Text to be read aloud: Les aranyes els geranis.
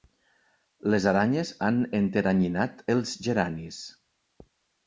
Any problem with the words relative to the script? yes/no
yes